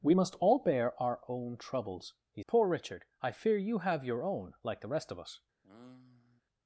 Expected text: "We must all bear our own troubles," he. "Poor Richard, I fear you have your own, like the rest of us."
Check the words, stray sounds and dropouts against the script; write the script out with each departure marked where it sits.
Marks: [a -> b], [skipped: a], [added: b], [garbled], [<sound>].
"We must all bear our own troubles," he. "Poor Richard, I fear you have your own, like the rest of us." [sigh]